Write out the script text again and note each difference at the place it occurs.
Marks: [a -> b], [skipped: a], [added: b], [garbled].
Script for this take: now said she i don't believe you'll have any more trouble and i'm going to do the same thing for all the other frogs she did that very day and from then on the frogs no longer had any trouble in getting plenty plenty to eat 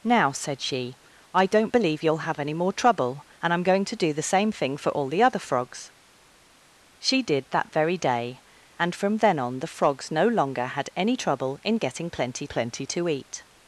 now said she i don't believe you'll have any more trouble and i'm going to do the same thing for all the other frogs she did that very day and from then on the frogs no longer had any trouble in getting plenty plenty to eat